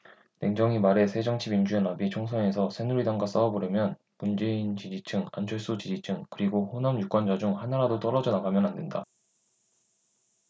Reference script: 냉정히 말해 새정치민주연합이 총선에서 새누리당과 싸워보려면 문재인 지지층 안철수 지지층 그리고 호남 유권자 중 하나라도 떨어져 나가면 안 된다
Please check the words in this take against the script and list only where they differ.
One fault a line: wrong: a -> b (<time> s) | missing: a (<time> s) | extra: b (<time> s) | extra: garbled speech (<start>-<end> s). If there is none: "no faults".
no faults